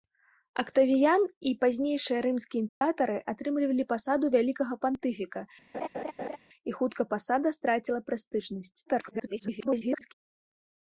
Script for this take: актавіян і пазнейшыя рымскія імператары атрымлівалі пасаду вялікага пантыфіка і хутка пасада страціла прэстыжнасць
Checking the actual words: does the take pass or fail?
fail